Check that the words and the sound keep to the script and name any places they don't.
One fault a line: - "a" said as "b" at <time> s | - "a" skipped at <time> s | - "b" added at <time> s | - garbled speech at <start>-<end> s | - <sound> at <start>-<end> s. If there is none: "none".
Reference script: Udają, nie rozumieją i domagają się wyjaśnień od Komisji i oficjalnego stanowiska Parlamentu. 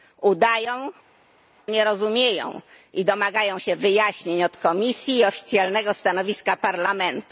none